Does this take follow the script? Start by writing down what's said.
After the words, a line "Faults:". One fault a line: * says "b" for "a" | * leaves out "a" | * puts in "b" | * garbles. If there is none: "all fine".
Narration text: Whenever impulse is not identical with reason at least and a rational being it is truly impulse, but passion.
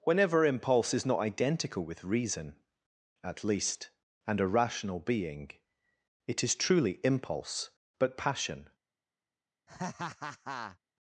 Whenever impulse is not identical with reason at least and a rational being it is truly impulse, but passion.
Faults:
all fine